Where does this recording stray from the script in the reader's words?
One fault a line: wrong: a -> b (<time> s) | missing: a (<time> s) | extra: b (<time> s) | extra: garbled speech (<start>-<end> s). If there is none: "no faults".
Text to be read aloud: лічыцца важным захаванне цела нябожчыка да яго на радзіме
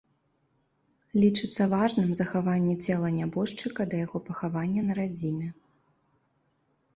extra: пахавання (4.3 s)